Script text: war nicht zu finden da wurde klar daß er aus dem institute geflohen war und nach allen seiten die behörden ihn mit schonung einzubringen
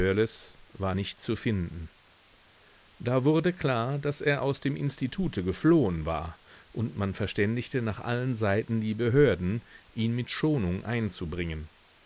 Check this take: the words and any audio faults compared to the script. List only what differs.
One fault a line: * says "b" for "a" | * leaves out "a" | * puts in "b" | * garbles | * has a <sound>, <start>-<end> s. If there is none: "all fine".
* puts in "man verständigte"